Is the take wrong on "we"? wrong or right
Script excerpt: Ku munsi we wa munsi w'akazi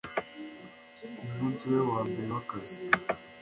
right